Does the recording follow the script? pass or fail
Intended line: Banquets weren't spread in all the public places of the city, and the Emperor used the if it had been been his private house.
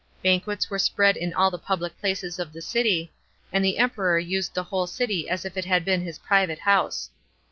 fail